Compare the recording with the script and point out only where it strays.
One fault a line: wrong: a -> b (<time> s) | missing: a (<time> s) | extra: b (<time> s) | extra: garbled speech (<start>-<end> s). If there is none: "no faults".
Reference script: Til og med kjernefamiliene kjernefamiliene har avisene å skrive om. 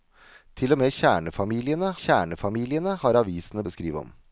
no faults